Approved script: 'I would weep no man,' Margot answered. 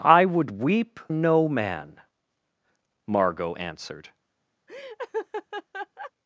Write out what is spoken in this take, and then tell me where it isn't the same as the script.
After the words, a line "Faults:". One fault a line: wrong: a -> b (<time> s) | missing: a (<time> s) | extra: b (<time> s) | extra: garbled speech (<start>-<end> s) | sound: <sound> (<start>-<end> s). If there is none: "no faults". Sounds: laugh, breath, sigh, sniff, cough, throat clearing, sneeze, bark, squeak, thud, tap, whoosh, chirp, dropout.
'I would weep no man,' Margot answered.
Faults:
sound: laugh (4.7-6.1 s)